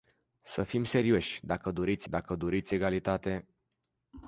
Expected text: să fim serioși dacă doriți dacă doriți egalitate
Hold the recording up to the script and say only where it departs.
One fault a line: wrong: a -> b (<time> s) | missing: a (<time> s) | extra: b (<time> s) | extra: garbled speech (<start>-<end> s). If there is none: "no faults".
no faults